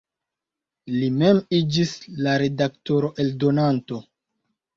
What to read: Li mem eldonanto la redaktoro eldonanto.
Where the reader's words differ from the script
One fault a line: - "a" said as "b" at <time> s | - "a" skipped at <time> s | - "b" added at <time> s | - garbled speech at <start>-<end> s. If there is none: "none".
- "eldonanto" said as "iĝis" at 1.6 s